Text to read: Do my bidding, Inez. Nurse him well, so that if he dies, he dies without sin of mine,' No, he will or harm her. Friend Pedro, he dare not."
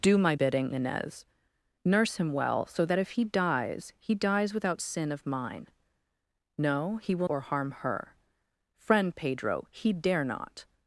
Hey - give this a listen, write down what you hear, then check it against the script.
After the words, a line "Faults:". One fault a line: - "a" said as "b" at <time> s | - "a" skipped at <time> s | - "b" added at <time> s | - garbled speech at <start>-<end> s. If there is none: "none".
Do my bidding, Inez. Nurse him well, so that if he dies, he dies without sin of mine,' No, he will or harm her. Friend Pedro, he dare not."
Faults:
none